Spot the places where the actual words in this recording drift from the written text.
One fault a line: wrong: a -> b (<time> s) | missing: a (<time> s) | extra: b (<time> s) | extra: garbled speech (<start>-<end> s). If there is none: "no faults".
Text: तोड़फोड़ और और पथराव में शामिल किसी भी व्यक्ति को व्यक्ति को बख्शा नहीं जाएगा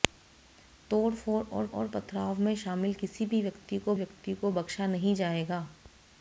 no faults